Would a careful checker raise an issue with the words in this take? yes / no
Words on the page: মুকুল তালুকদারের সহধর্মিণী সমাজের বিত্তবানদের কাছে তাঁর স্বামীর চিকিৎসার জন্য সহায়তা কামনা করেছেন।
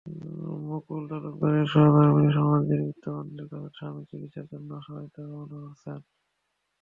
yes